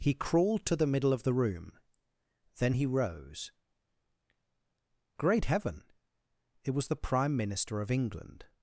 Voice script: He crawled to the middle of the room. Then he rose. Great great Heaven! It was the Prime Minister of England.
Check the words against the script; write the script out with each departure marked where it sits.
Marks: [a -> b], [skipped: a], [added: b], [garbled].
He crawled to the middle of the room. Then he rose. Great [skipped: great] Heaven! It was the Prime Minister of England.